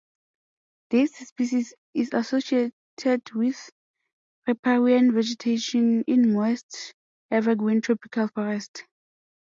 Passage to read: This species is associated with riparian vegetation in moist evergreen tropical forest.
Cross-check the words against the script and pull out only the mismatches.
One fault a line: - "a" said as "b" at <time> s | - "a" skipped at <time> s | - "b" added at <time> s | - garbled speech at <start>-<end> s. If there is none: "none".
none